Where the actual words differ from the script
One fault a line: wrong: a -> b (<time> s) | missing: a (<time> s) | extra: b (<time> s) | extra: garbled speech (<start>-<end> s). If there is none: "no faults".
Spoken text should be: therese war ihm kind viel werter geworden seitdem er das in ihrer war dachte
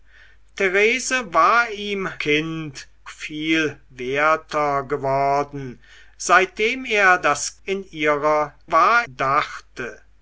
no faults